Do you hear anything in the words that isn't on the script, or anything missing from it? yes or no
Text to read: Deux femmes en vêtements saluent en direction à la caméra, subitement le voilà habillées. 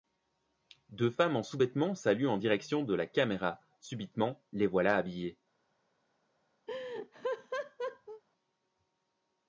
yes